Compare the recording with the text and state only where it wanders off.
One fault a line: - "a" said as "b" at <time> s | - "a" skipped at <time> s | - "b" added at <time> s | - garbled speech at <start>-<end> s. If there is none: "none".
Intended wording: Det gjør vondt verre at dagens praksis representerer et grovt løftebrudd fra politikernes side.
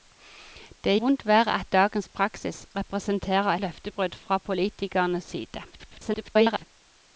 - "gjør" skipped at 0.9 s
- "et grovt" skipped at 3.5 s
- garbled speech at 5.7-6.6 s